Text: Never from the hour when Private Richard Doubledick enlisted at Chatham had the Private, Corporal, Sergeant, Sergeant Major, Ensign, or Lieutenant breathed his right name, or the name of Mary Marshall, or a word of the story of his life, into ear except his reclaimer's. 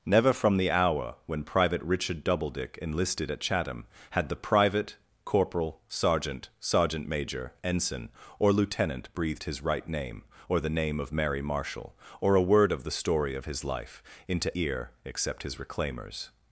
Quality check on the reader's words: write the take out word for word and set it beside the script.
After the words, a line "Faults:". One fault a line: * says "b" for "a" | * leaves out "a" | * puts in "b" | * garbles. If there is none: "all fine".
Never from the hour when Private Richard Doubledick enlisted at Chatham had the Private, Corporal, Sergeant, Sergeant Major, Ensign, or Lieutenant breathed his right name, or the name of Mary Marshall, or a word of the story of his life, into ear except his reclaimer's.
Faults:
all fine